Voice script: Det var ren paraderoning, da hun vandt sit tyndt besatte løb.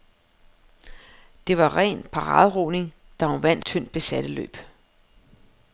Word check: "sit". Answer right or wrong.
wrong